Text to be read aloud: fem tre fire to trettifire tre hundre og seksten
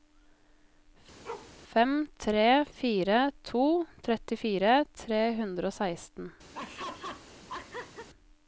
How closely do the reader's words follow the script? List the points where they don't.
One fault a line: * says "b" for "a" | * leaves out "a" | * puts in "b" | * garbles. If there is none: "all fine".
all fine